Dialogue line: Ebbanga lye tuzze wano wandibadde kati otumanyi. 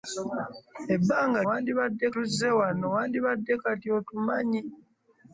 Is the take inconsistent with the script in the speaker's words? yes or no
yes